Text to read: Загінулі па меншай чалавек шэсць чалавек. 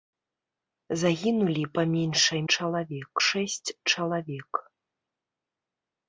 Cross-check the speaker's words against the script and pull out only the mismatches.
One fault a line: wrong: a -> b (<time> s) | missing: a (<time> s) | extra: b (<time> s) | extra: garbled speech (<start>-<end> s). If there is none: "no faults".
no faults